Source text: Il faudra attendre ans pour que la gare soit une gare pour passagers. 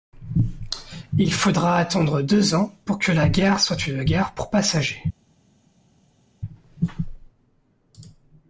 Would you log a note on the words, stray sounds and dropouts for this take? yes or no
yes